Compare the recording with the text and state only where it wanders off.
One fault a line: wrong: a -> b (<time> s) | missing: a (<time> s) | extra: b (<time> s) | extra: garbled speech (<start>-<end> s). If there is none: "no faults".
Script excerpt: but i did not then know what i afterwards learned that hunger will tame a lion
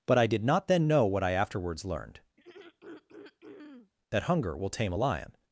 no faults